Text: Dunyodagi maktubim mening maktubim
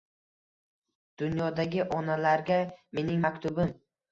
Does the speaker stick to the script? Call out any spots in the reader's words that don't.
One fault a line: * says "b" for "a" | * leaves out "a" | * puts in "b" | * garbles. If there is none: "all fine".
* says "onalarga" for "maktubim"